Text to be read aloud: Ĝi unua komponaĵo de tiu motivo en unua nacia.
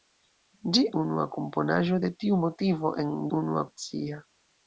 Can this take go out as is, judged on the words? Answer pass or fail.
pass